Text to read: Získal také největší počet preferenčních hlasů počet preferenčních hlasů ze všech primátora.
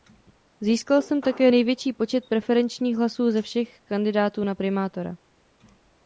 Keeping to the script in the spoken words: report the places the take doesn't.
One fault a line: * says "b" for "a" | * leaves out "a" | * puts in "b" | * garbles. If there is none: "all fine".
* puts in "jsem"
* says "ze všech kandidátů na" for "počet preferenčních hlasů ze všech"